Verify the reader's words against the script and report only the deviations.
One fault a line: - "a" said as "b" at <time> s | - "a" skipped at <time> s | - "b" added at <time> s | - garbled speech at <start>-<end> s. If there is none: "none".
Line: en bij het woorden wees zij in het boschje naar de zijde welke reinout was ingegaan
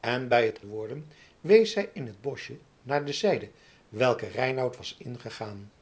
none